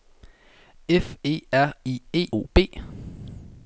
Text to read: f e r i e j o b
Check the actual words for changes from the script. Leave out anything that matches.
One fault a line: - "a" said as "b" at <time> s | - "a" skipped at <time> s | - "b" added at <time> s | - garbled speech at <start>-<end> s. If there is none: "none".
- "j" skipped at 2.3 s